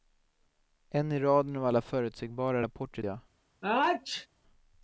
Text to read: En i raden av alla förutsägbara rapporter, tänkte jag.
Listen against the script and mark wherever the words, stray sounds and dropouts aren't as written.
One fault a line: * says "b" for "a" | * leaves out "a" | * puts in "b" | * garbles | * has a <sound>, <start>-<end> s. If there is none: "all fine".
* leaves out "tänkte"
* has a sneeze, 3.6-4.3 s